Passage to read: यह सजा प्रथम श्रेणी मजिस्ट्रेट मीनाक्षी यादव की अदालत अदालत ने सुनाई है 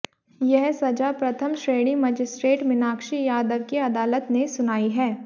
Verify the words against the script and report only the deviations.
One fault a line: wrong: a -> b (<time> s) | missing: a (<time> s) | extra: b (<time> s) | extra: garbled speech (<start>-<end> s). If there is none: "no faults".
missing: अदालत (4.3 s)